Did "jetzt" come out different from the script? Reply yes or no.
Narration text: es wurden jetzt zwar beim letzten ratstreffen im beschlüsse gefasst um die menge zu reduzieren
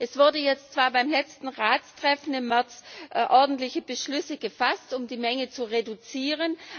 no